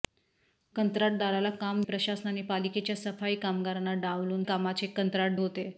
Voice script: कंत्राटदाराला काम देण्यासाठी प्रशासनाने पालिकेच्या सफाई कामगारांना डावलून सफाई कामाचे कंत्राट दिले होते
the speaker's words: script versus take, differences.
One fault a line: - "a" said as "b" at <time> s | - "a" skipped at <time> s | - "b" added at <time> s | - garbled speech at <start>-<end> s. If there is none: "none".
- "देण्यासाठी" skipped at 1.8 s
- "सफाई" skipped at 4.4 s
- "दिले" skipped at 5.4 s